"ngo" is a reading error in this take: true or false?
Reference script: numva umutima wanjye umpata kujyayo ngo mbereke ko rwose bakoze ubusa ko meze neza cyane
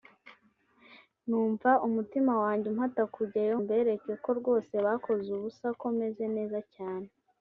true